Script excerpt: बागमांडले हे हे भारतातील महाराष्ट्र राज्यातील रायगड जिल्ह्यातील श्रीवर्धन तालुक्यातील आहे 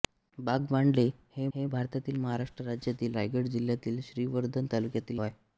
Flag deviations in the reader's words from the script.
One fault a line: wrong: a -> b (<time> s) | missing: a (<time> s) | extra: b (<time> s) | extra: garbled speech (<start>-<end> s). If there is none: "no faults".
no faults